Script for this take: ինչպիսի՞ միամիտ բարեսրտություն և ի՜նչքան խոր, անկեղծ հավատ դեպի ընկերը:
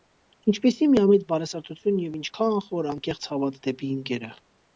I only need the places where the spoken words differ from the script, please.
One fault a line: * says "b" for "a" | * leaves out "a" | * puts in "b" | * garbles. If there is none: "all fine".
all fine